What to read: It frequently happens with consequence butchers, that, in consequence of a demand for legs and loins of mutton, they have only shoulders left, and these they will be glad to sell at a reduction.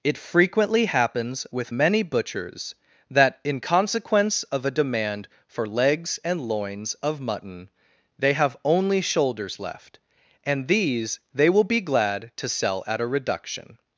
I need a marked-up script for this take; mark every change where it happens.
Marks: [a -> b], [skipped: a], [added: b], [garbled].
It frequently happens with [consequence -> many] butchers, that, in consequence of a demand for legs and loins of mutton, they have only shoulders left, and these they will be glad to sell at a reduction.